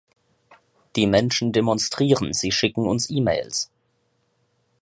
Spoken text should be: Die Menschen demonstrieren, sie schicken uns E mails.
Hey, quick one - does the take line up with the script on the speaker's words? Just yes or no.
yes